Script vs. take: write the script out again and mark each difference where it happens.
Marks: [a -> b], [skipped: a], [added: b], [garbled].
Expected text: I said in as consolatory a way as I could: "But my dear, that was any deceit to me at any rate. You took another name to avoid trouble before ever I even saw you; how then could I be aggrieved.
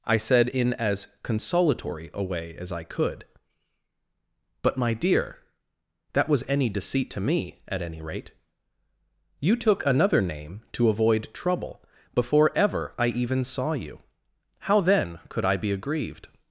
I said in as consolatory a way as I could: "But my dear, that was any deceit to me at any rate. You took another name to avoid trouble before ever I even saw you; how then could I be aggrieved.